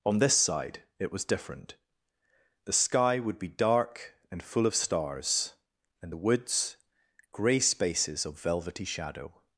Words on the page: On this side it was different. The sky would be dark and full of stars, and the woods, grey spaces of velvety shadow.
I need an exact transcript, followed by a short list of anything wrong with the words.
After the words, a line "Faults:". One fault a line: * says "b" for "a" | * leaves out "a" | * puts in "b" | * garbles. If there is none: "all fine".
On this side it was different. The sky would be dark and full of stars, and the woods, grey spaces of velvety shadow.
Faults:
all fine